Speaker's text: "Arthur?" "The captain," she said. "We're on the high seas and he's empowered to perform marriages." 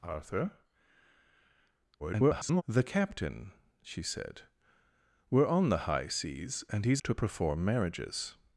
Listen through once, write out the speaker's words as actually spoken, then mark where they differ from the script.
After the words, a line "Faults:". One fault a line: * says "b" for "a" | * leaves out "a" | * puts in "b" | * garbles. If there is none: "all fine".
"Arthur?" [garbled] "The captain," she said. "We're on the high seas and he's to perform marriages."
Faults:
* garbles
* leaves out "empowered"